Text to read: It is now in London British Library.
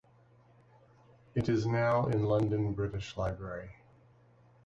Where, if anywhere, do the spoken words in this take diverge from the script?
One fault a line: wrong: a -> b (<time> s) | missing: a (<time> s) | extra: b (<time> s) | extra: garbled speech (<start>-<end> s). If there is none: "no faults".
no faults